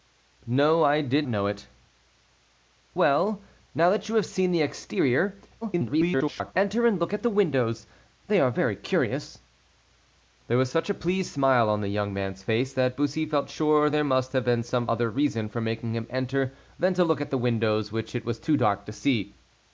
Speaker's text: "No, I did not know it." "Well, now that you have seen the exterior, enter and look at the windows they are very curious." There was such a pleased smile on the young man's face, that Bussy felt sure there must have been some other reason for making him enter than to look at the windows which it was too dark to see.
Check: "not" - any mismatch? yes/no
yes